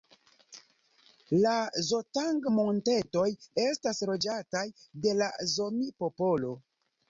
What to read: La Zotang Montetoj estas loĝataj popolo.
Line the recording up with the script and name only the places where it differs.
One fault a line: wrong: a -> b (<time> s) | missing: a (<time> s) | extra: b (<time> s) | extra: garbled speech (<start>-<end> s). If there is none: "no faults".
extra: de la Zomi (5.1 s)